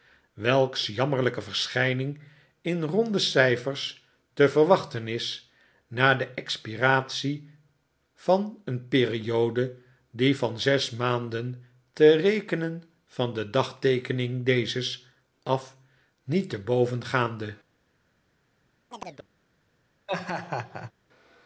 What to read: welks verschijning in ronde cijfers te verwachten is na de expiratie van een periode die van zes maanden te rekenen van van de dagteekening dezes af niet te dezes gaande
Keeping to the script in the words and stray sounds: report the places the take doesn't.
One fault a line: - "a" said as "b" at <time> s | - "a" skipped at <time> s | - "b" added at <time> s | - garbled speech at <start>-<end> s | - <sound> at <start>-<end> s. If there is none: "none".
- "jammerlijke" added at 0.9 s
- "van" skipped at 13.3 s
- "dezes" said as "boven" at 16.6 s
- chirp at 18.9-19.3 s
- laugh at 20.1-20.9 s